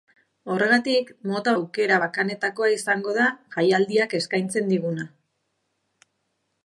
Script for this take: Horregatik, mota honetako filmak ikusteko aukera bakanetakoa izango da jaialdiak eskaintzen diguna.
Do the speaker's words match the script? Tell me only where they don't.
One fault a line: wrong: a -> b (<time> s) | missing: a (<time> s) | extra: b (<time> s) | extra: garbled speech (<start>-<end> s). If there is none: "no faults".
missing: honetako filmak ikusteko (1.5 s)